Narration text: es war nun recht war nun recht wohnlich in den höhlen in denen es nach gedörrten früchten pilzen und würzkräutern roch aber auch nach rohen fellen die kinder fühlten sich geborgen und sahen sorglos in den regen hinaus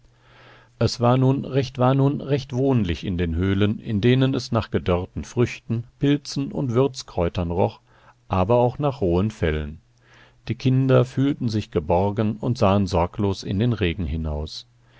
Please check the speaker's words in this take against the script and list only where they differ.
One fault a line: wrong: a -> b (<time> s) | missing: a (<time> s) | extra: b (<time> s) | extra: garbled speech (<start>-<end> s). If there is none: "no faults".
no faults